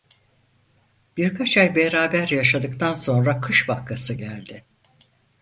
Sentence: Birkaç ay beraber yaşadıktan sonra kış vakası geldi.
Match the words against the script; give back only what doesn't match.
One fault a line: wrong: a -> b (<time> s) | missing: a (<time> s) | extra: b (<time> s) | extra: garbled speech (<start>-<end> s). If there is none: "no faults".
no faults